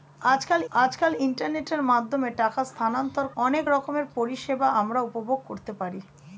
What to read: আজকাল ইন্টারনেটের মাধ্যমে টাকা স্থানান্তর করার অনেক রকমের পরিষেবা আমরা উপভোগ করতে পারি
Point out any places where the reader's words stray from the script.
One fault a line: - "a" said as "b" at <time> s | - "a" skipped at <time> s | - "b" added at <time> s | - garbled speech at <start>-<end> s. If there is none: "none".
- "আজকাল" added at 0.8 s
- "করার" skipped at 3.3 s